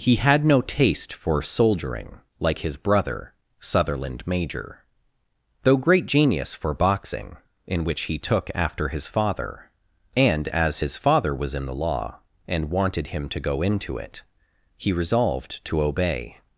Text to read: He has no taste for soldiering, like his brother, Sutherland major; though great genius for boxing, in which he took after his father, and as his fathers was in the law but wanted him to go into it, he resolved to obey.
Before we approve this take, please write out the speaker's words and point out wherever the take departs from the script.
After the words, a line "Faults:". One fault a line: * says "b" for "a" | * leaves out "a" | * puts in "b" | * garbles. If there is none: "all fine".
He had no taste for soldiering, like his brother, Sutherland major; though great genius for boxing, in which he took after his father, and as his father was in the law and wanted him to go into it, he resolved to obey.
Faults:
* says "had" for "has"
* says "father" for "fathers"
* says "and" for "but"